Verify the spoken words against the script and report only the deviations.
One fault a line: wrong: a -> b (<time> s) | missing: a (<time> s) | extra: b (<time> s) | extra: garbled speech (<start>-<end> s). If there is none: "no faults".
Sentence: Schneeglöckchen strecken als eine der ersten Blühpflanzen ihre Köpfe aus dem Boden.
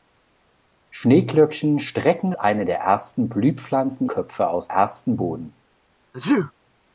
missing: als (2.3 s)
missing: ihre (4.1 s)
wrong: dem -> ersten (4.7 s)